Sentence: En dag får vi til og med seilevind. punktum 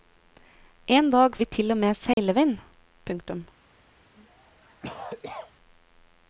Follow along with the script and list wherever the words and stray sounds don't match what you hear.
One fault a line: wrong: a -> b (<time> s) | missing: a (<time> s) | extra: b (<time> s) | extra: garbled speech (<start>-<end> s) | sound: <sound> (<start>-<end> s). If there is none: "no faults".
missing: får (1.4 s)
sound: dropout (2.1-2.2 s)
sound: cough (4.1-5.5 s)